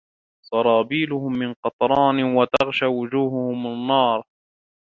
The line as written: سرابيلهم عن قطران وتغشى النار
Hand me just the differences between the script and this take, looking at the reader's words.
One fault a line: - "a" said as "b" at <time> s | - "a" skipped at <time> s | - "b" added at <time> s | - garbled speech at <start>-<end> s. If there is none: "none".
- "عن" said as "من" at 1.3 s
- "وجوههم" added at 2.9 s